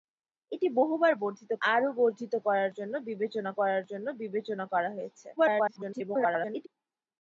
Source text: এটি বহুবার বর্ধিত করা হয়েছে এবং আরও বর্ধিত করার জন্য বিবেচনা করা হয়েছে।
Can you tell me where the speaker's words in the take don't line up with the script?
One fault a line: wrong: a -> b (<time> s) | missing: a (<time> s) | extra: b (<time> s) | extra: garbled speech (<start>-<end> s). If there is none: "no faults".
wrong: করা হয়েছে এবং আরও বর্ধিত -> আরও বর্ধিত করার জন্য বিবেচনা (1.7 s)
extra: garbled speech (5.4-6.7 s)